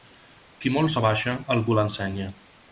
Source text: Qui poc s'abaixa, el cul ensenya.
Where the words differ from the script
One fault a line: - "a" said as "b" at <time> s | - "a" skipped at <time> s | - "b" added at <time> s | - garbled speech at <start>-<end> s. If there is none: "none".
- "poc" said as "molt" at 0.8 s